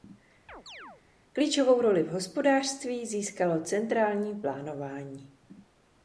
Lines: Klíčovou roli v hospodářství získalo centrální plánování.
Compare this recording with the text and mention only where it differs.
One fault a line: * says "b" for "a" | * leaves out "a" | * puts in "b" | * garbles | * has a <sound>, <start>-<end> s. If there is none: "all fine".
* has a chirp, 0.5-1.0 s